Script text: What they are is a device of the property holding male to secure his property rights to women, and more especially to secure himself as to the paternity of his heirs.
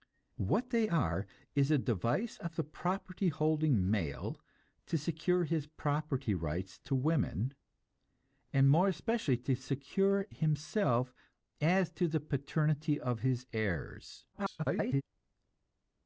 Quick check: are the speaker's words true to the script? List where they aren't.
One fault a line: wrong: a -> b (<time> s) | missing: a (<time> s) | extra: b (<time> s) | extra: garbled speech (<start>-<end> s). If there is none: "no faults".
extra: garbled speech (14.3-15.0 s)